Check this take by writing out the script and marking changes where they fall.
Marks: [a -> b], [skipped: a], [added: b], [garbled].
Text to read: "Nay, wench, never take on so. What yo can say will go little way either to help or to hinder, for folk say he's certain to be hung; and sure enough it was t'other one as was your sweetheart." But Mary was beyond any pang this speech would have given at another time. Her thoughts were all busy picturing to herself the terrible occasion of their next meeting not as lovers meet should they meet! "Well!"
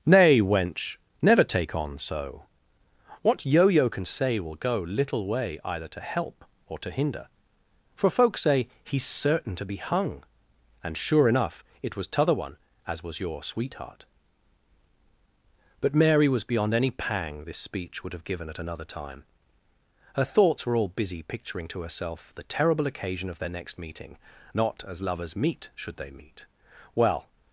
"Nay, wench, never take on so. What yo [added: yo] can say will go little way either to help or to hinder, for folk say he's certain to be hung; and sure enough it was t'other one as was your sweetheart." But Mary was beyond any pang this speech would have given at another time. Her thoughts were all busy picturing to herself the terrible occasion of their next meeting not as lovers meet should they meet! "Well!"